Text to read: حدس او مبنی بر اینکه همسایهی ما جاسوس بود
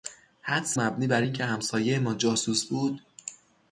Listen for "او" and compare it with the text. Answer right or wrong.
wrong